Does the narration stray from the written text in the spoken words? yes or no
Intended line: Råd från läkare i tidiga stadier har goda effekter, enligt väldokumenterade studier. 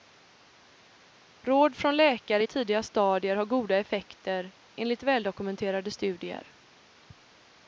no